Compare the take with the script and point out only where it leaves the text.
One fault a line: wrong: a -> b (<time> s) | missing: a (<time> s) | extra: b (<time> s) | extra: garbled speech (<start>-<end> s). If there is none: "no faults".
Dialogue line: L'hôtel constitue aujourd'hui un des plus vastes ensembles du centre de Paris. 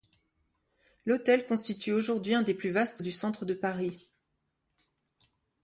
missing: ensembles (3.0 s)